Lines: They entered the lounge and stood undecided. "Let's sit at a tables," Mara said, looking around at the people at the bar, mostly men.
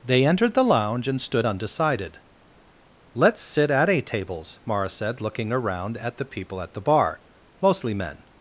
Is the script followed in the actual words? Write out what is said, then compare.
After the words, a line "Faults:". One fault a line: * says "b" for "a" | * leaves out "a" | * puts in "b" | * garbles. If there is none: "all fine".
They entered the lounge and stood undecided. "Let's sit at a tables," Mara said, looking around at the people at the bar, mostly men.
Faults:
all fine